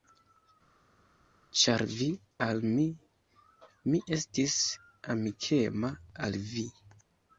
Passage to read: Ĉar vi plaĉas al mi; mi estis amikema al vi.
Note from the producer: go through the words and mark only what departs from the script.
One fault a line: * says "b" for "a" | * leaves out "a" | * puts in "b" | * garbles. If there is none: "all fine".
* leaves out "plaĉas"